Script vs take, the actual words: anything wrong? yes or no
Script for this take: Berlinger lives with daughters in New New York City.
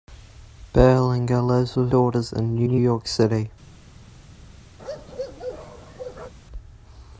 no